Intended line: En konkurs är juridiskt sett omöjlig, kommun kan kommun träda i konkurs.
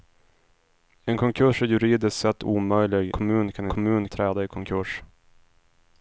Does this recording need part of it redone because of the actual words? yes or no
no